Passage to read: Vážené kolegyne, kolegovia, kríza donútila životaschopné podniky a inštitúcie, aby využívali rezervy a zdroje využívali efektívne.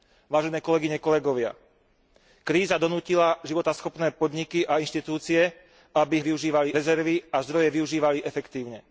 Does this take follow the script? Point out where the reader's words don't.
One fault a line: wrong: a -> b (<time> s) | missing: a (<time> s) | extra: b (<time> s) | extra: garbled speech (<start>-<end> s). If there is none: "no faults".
no faults